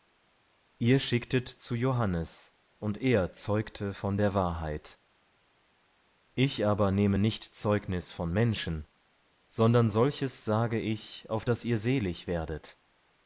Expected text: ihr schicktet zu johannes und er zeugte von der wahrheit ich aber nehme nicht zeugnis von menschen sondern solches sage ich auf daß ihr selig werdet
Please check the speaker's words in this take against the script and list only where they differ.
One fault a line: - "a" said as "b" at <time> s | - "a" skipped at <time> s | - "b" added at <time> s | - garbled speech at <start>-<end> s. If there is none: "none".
none